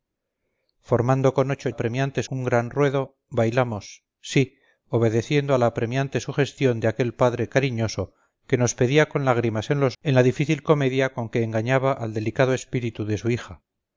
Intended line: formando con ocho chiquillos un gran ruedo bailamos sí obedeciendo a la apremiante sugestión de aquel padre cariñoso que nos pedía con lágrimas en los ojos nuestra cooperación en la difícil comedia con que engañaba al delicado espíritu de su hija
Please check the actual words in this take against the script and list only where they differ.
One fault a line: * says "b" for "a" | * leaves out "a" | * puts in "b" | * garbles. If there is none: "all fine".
* says "apremiante" for "chiquillos"
* leaves out "ojos nuestra cooperación"